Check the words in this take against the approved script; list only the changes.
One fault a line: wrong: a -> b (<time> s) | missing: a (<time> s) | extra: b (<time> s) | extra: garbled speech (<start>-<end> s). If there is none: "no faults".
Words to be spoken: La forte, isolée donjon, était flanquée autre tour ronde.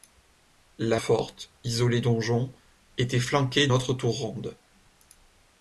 no faults